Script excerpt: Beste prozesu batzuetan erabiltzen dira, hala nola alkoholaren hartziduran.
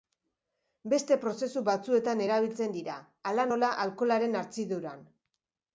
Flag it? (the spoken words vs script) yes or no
no